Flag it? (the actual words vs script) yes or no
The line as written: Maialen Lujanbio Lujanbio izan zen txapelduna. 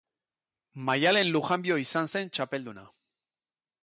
yes